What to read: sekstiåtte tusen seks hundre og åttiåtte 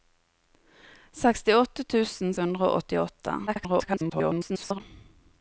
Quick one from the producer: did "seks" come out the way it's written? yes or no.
no